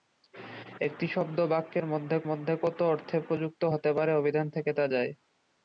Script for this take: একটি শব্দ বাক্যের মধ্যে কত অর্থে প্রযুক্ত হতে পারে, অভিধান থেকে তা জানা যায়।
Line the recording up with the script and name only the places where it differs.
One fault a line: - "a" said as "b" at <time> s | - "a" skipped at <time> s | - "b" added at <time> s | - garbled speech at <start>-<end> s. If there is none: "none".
- "মধ্যে" added at 2.3 s
- "জানা" skipped at 4.8 s